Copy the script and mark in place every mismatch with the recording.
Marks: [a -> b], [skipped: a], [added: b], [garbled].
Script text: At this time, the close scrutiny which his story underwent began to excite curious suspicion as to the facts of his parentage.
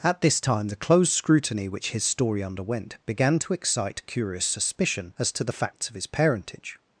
At this time, the close scrutiny which his story underwent began to excite curious suspicion as to the facts of his parentage.